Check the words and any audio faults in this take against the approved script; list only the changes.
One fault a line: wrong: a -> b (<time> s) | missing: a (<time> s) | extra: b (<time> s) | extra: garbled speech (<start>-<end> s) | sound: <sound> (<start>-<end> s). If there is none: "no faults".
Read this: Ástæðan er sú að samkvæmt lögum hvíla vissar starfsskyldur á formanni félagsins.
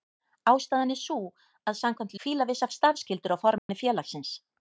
missing: lögum (2.2 s)
sound: dropout (3.6-3.7 s)